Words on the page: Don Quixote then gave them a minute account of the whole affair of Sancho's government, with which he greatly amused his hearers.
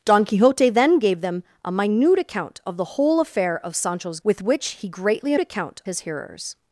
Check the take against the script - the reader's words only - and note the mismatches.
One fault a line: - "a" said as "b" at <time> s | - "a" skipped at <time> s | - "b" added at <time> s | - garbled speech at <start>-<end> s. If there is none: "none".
- "government" skipped at 4.2 s
- "amused" said as "account" at 5.4 s